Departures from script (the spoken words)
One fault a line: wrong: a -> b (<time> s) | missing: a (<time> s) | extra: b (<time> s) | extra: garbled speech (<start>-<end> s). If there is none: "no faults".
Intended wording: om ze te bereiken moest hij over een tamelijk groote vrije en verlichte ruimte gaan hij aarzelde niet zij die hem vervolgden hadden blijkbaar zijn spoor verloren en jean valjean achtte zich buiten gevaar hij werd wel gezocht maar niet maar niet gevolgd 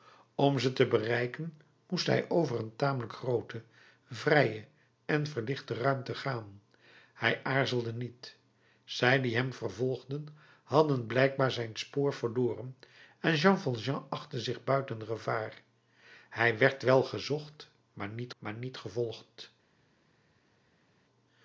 no faults